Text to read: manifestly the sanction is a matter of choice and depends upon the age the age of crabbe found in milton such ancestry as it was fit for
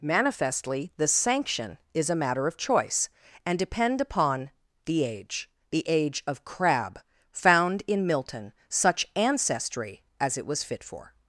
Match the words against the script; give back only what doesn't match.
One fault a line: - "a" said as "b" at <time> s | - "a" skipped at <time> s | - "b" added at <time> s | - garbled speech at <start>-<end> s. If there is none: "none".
- "depends" said as "depend" at 3.6 s